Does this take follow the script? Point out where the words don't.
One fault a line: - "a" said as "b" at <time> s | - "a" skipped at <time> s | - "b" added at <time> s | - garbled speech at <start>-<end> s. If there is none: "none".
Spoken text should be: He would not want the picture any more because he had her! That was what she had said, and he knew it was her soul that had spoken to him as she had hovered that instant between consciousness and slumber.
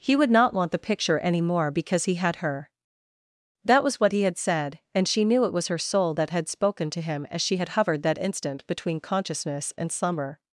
- "she" said as "he" at 4.1 s
- "he" said as "she" at 5.1 s